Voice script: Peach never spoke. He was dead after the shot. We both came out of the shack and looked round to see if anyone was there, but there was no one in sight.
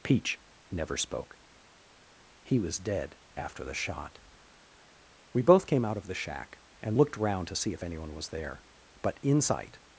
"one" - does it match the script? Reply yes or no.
no